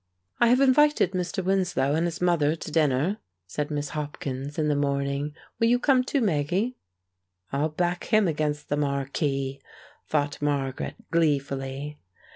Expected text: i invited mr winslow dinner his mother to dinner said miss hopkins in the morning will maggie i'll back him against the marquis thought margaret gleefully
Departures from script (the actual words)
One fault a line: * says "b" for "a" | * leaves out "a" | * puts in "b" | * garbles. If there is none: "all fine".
* puts in "have"
* says "and" for "dinner"
* puts in "you come too"